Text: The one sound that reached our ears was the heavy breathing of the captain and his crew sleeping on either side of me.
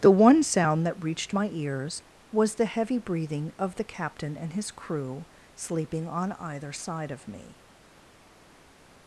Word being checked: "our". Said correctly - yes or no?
no